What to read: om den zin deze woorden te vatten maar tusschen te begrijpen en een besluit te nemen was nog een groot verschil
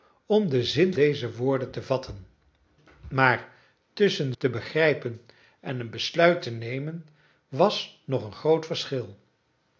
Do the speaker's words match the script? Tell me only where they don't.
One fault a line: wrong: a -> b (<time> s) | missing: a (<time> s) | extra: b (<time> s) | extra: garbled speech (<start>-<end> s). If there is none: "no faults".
no faults